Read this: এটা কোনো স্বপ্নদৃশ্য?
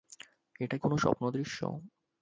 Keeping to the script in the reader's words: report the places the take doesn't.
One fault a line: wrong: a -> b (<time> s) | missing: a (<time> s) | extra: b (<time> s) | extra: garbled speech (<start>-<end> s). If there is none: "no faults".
no faults